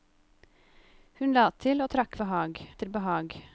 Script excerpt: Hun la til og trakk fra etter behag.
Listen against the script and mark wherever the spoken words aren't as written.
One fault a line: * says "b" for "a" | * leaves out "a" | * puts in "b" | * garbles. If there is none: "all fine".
* says "behag" for "fra"